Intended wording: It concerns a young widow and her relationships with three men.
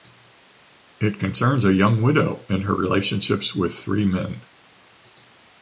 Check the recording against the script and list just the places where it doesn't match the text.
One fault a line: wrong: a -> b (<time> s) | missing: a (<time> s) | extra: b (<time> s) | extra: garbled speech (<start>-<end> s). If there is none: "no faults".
no faults